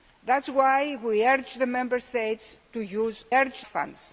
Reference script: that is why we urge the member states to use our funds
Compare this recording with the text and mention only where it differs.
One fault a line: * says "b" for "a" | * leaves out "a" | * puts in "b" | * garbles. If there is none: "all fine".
* says "urge" for "our"